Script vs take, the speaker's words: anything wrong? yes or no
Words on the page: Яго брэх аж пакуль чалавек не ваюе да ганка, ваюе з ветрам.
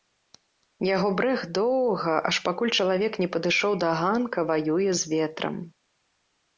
yes